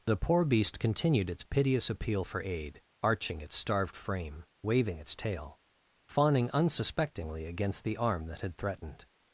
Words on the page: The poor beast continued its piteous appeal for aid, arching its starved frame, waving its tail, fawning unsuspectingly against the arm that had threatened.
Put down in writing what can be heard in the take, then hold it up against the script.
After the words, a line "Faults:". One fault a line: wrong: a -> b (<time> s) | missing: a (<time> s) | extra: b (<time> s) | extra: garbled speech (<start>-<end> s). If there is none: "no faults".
The poor beast continued its piteous appeal for aid, arching its starved frame, waving its tail, fawning unsuspectingly against the arm that had threatened.
Faults:
no faults